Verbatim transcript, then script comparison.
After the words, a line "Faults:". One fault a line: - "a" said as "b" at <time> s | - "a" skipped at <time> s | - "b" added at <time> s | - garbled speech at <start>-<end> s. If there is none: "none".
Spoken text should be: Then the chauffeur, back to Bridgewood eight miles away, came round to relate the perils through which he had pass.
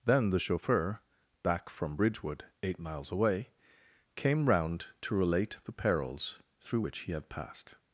Then the chauffeur, back from Bridgewood eight miles away, came round to relate the perils through which he had passed.
Faults:
- "to" said as "from" at 1.7 s
- "pass" said as "passed" at 7.3 s